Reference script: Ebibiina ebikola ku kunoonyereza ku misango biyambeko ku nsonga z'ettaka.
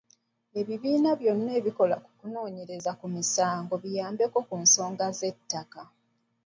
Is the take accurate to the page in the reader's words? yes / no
no